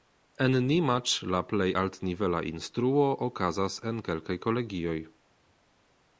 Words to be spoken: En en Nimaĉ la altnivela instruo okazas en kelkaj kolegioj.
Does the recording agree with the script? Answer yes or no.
no